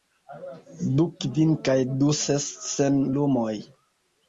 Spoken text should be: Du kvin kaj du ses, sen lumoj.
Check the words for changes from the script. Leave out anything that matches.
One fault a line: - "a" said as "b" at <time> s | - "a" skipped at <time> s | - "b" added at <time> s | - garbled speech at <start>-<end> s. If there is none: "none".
none